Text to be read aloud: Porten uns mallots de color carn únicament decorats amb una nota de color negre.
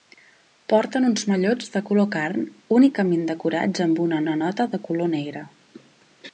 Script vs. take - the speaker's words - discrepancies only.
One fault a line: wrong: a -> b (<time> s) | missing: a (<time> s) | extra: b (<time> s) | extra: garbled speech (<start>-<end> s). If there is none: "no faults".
extra: una (4.2 s)